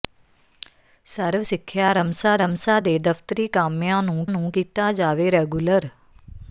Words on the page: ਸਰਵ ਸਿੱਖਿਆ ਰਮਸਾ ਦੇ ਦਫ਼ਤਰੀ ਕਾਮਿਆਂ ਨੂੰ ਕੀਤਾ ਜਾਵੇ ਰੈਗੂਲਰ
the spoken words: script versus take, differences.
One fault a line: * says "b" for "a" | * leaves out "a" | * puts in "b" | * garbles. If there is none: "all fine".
* puts in "ਰਮਸਾ"
* puts in "ਨੂੰ"